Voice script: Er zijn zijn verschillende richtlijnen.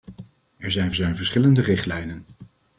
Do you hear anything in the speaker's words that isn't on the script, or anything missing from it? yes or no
no